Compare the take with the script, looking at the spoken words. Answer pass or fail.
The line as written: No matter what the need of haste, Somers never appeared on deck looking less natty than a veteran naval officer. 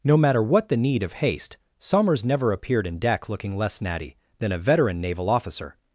fail